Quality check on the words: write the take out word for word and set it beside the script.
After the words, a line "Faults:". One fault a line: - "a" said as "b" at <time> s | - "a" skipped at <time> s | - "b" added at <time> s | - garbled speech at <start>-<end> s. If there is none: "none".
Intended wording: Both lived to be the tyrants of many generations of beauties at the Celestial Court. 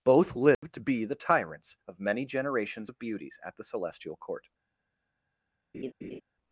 Both lived to be the tyrants of many generations of beauties at the Celestial Court.
Faults:
none